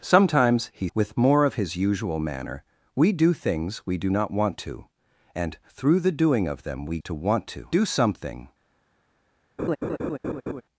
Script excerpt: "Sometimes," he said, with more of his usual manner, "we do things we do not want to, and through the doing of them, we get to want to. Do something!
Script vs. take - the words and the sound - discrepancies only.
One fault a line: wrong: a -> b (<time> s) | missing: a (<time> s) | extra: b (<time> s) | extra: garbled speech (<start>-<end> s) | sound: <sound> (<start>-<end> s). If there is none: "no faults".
missing: said (0.9 s)
missing: get (7.0 s)
sound: laugh (9.6-10.6 s)